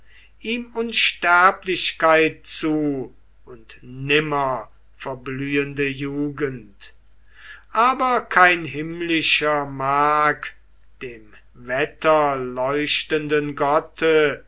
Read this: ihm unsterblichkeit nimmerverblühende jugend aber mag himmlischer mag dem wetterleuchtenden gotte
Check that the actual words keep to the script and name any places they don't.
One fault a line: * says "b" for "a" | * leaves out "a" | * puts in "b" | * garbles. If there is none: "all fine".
* puts in "zu und"
* says "kein" for "mag"